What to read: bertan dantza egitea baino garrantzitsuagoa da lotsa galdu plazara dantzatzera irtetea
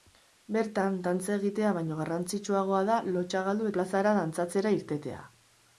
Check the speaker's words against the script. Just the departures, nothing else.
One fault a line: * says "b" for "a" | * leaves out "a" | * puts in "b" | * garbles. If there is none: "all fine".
all fine